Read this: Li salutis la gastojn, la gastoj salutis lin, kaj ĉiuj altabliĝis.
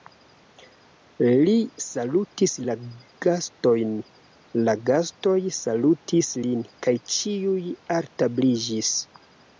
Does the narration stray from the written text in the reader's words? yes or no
no